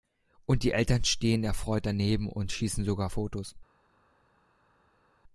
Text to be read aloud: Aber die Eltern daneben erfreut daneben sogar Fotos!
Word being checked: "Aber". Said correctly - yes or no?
no